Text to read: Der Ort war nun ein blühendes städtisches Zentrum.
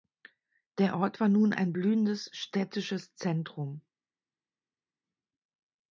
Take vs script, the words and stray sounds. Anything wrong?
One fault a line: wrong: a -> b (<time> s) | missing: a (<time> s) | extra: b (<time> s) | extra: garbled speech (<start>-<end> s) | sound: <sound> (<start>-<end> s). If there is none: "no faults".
no faults